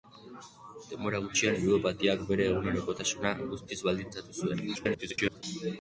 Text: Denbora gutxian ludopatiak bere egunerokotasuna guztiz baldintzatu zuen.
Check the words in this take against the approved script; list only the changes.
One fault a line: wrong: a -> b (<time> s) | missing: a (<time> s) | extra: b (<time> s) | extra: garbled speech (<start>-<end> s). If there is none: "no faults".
extra: garbled speech (4.7-5.4 s)